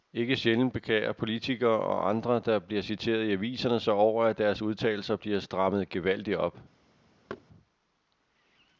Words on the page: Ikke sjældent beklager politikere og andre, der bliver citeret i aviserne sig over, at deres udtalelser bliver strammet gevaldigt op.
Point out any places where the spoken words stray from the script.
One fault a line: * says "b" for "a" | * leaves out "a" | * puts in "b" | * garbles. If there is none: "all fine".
all fine